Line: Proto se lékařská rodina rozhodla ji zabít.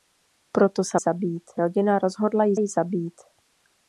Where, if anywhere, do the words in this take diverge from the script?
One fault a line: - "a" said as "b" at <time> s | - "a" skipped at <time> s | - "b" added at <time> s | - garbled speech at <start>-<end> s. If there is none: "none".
- "lékařská" said as "zabít" at 1.0 s
- "ji" added at 2.6 s